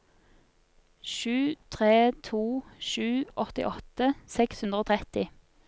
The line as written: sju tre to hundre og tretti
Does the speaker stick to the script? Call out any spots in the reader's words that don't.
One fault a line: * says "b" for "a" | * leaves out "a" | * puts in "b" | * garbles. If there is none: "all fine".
* puts in "sju åttiåtte seks"